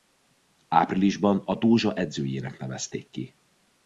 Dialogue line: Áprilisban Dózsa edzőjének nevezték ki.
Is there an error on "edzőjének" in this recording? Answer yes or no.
no